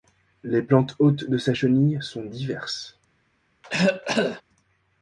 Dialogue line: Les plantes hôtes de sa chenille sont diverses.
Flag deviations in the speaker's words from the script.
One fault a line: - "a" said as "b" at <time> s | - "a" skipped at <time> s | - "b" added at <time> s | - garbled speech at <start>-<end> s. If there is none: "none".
none